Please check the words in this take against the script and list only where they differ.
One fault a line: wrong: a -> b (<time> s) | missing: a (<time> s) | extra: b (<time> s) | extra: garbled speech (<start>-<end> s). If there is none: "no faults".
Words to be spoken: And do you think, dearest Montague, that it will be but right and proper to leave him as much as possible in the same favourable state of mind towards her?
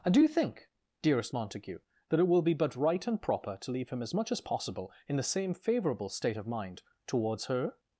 no faults